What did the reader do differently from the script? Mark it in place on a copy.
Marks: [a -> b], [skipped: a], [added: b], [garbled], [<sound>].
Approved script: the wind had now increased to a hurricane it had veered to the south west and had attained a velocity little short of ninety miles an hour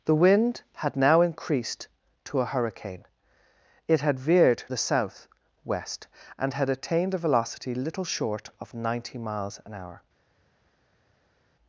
the wind had now increased to a hurricane it had veered [skipped: to] the south west and had attained a velocity little short of ninety miles an hour